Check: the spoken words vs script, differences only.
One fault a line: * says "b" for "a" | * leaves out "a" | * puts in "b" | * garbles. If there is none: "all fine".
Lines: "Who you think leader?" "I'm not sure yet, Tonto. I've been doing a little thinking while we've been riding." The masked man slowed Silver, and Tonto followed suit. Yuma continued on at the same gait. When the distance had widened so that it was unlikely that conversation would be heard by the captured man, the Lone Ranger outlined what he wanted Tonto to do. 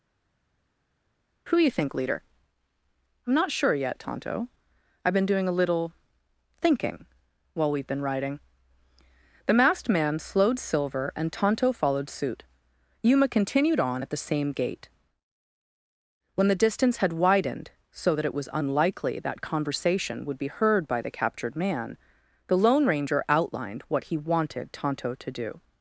all fine